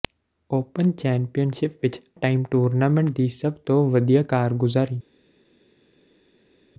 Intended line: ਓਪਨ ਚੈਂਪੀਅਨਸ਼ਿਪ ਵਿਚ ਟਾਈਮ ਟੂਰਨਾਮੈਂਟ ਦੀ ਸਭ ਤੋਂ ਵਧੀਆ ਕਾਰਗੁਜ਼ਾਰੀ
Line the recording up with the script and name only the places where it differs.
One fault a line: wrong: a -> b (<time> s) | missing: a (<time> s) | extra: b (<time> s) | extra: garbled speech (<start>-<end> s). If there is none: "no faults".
no faults